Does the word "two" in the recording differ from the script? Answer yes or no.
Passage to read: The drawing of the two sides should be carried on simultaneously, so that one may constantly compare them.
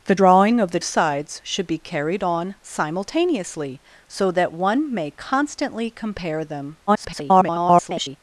yes